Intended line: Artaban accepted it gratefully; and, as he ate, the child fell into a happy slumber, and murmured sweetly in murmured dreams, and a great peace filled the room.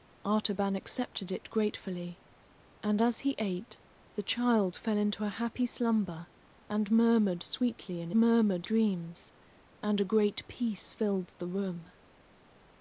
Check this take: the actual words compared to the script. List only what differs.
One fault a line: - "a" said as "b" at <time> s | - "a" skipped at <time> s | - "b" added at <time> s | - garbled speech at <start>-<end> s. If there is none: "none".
none